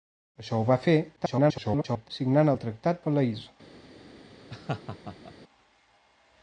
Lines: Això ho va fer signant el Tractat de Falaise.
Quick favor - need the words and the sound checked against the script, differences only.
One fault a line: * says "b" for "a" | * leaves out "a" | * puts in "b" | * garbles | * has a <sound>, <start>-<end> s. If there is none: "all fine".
* garbles
* leaves out "de"
* has a laugh, 4.5-5.3 s